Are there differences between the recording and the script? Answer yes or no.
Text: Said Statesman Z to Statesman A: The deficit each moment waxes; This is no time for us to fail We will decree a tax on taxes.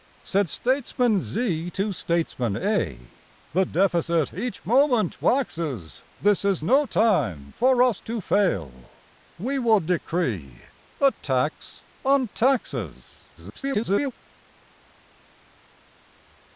yes